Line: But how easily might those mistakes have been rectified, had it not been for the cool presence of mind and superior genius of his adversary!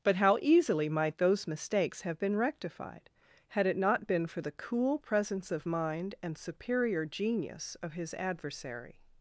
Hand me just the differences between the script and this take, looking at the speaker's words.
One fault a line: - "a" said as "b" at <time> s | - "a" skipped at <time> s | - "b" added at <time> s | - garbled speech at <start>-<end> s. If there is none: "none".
none